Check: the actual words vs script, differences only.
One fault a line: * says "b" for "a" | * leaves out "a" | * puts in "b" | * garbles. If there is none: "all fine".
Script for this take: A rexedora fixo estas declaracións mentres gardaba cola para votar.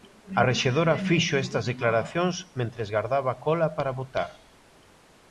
all fine